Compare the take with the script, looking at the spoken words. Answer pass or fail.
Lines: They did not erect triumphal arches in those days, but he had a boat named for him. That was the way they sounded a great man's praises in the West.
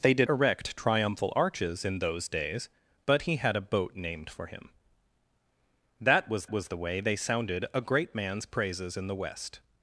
fail